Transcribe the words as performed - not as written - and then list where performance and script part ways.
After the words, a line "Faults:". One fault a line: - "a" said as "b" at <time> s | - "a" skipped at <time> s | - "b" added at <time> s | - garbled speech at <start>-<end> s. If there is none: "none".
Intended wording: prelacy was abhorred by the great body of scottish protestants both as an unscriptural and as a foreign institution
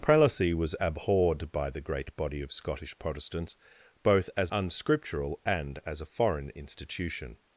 prelacy was abhorred by the great body of scottish protestants both as unscriptural and as a foreign institution
Faults:
- "an" skipped at 4.5 s